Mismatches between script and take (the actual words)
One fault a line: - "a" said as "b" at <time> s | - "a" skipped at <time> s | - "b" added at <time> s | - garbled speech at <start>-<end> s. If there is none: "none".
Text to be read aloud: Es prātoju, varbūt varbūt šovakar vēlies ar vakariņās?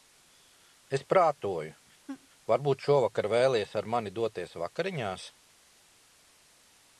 - "varbūt" skipped at 2.8 s
- "mani doties" added at 4.0 s